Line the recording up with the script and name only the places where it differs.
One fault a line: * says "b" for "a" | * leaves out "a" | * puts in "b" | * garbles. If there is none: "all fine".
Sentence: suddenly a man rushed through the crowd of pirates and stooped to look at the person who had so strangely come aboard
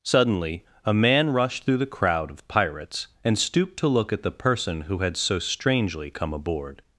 all fine